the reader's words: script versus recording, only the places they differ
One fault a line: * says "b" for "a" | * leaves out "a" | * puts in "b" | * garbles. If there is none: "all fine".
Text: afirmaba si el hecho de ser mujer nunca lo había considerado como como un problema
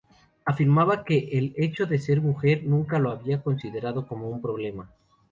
* says "que" for "si"
* leaves out "como"